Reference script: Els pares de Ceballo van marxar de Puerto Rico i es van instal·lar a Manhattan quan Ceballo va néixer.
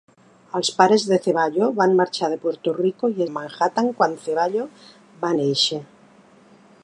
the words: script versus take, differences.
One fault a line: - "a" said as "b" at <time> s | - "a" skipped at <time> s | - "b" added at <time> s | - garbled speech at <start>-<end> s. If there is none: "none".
- "es van instal·lar" skipped at 3.2 s